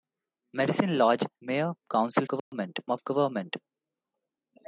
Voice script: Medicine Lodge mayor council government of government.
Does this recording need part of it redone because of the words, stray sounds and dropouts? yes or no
yes